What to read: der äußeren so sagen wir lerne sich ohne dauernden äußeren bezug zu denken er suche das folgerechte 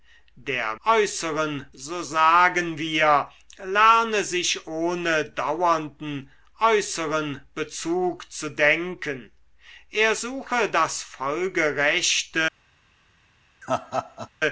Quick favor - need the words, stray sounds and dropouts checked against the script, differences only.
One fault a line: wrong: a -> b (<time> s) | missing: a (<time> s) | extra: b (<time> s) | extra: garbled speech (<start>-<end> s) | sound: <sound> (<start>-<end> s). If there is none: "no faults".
sound: laugh (13.6-14.3 s)